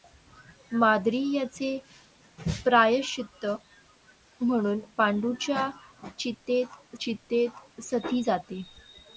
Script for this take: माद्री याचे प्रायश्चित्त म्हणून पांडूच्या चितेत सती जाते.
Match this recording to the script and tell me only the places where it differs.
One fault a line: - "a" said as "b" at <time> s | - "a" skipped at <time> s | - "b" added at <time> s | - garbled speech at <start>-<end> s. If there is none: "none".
- "चितेत" added at 7.0 s